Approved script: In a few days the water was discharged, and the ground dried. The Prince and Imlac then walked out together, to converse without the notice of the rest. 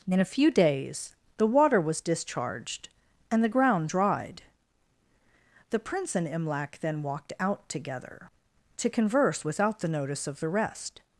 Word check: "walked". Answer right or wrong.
right